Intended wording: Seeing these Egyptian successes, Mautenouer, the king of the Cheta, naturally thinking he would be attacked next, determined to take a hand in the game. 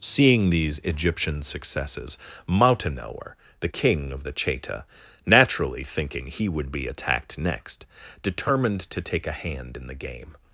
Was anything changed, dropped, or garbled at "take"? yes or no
no